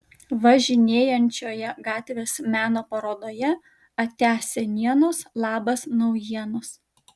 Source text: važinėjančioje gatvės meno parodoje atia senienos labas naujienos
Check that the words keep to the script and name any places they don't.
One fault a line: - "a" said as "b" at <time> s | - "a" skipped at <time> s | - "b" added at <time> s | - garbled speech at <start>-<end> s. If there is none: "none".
none